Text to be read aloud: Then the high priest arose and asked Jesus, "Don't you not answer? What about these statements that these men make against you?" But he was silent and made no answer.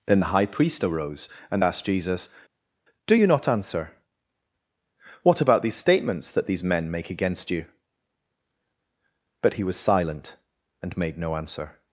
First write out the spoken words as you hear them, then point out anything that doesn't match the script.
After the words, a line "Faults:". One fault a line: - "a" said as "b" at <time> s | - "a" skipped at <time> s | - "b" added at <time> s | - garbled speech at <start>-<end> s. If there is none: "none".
Then the high priest arose and asked Jesus, "Do you not answer? What about these statements that these men make against you?" But he was silent and made no answer.
Faults:
- "Don't" said as "Do" at 3.1 s